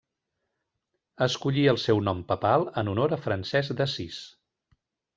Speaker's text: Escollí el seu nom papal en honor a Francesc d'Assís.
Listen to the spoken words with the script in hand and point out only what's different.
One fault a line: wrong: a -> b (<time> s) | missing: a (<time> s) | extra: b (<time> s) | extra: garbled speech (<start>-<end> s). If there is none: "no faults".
no faults